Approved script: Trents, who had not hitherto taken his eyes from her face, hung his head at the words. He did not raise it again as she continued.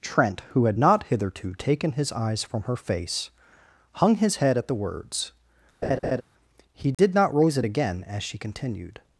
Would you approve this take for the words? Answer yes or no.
no